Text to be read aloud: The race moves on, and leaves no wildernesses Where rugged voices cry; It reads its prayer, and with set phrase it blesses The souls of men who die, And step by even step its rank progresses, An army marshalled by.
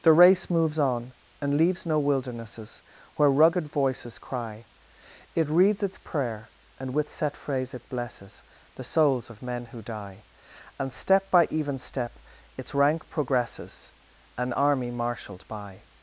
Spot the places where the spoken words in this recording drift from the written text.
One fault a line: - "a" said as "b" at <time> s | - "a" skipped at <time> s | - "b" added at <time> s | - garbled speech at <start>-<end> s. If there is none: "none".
none